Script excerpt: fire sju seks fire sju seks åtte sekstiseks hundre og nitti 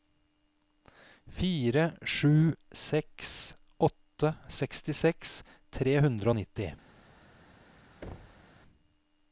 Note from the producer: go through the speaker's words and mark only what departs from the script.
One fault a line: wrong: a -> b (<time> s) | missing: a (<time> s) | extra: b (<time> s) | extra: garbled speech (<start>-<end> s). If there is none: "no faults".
missing: fire sju seks (3.4 s)
extra: tre (5.8 s)